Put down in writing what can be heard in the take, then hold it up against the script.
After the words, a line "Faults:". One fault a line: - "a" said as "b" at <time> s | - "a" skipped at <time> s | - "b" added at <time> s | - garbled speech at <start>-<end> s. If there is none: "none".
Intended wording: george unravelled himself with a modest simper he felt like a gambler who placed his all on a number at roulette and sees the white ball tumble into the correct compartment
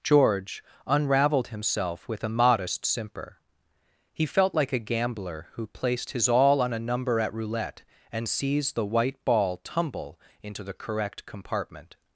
george unravelled himself with a modest simper he felt like a gambler who placed his all on a number at roulette and sees the white ball tumble into the correct compartment
Faults:
none